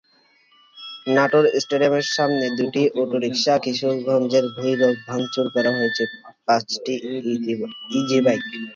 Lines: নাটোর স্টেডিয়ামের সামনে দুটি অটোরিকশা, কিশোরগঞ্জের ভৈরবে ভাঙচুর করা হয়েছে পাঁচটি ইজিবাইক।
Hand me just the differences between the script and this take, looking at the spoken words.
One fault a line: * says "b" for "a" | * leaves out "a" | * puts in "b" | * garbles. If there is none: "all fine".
all fine